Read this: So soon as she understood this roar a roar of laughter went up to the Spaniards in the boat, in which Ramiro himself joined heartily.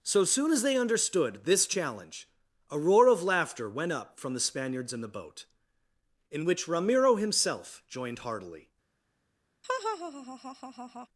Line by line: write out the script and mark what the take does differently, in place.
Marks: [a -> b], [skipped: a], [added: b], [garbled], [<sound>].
So soon as [she -> they] understood this [roar -> challenge] a roar of laughter went up [to -> from] the Spaniards in the boat, in which Ramiro himself joined heartily. [laugh]